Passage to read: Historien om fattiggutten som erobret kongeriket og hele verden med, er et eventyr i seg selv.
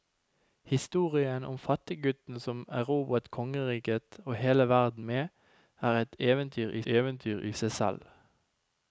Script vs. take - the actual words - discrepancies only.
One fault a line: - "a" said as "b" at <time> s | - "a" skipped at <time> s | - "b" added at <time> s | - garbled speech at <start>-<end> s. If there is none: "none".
- "eventyr i" added at 6.8 s